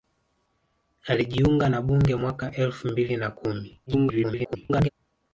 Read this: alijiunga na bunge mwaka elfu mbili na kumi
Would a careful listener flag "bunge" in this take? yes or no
no